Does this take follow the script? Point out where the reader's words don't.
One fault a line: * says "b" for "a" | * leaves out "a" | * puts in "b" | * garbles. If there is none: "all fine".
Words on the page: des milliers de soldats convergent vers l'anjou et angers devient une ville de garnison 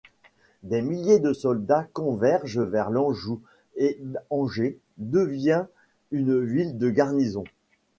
all fine